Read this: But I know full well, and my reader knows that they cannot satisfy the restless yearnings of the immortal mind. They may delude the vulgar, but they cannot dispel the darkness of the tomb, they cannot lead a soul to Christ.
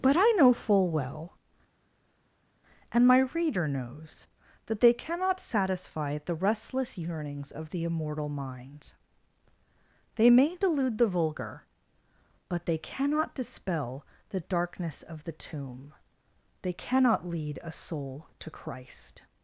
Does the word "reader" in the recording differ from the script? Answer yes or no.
no